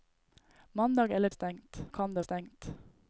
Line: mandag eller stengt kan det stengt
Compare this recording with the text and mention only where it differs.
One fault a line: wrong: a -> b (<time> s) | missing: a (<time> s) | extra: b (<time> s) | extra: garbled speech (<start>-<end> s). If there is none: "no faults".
no faults